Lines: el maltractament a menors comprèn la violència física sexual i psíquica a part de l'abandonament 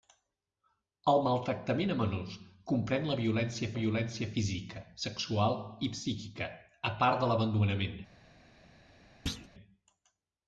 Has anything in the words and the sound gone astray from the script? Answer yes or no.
yes